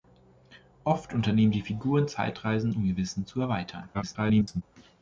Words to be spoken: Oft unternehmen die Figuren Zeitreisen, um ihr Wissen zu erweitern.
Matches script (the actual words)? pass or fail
fail